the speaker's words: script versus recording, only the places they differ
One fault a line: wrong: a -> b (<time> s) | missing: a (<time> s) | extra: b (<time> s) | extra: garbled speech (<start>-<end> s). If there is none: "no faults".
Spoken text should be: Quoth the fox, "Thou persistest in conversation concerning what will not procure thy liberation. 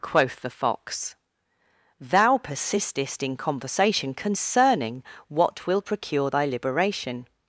missing: not (5.8 s)